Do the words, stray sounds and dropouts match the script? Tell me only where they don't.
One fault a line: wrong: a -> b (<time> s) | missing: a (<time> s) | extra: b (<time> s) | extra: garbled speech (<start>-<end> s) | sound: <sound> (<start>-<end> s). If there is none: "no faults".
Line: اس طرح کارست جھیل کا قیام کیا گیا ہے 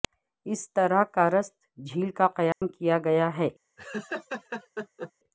sound: dropout (2.5-2.6 s)
sound: laugh (3.8-5.1 s)